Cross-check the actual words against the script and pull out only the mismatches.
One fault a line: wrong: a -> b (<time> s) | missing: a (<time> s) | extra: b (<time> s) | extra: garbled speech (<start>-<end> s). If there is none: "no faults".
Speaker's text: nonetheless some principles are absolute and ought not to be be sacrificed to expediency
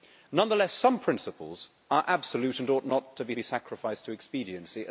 no faults